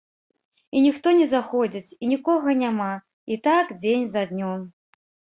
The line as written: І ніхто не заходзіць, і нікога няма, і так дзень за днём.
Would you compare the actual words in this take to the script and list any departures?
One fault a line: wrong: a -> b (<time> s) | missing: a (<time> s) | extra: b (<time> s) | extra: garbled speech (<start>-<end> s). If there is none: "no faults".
no faults